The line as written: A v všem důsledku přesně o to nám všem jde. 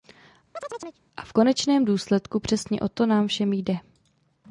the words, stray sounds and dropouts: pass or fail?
fail